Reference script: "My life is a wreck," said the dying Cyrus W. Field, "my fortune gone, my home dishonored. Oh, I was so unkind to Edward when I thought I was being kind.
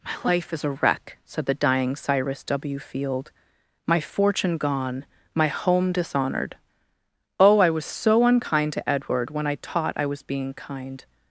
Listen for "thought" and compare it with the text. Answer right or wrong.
wrong